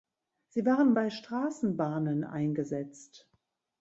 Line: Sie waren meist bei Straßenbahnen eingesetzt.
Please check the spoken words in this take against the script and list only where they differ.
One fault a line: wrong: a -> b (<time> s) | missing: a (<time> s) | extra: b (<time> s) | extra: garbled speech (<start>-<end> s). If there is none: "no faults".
missing: meist (0.9 s)